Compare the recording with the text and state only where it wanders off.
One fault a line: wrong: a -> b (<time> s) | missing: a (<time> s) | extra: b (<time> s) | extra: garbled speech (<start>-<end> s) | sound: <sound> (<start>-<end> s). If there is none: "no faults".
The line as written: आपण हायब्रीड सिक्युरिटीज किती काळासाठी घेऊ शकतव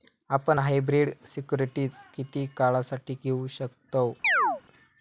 sound: chirp (4.2-4.6 s)